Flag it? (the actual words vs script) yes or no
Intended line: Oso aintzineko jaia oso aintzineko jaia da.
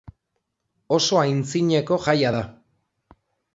yes